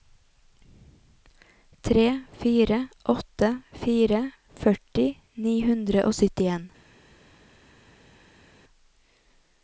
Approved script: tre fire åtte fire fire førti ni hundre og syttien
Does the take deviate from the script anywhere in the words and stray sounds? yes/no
yes